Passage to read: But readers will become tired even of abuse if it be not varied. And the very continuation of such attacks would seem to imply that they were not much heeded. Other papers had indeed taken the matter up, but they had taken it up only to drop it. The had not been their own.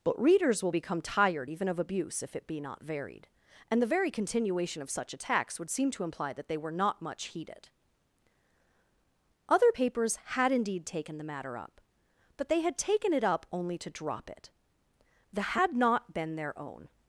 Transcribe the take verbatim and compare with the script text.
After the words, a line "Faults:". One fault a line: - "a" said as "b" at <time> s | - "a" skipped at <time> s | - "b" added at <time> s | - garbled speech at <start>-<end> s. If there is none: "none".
But readers will become tired even of abuse if it be not varied. And the very continuation of such attacks would seem to imply that they were not much heeded. Other papers had indeed taken the matter up, but they had taken it up only to drop it. The had not been their own.
Faults:
none